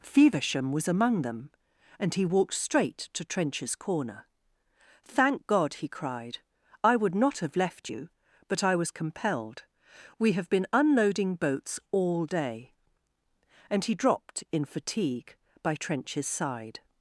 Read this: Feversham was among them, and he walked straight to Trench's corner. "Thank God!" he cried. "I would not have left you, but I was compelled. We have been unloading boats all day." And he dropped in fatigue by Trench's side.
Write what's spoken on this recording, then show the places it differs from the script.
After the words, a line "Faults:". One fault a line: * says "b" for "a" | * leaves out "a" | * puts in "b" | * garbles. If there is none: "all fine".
Feversham was among them, and he walked straight to Trench's corner. "Thank God!" he cried. "I would not have left you, but I was compelled. We have been unloading boats all day." And he dropped in fatigue by Trench's side.
Faults:
all fine